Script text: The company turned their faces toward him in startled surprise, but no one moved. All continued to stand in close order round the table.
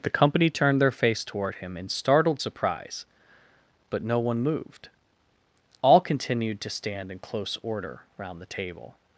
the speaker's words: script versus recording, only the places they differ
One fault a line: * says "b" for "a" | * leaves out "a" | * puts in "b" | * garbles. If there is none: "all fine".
* says "face" for "faces"